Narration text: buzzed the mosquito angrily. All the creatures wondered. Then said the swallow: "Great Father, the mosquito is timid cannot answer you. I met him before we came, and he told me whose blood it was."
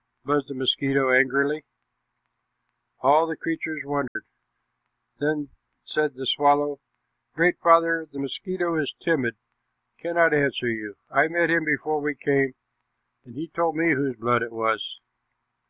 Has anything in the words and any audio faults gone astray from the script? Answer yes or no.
yes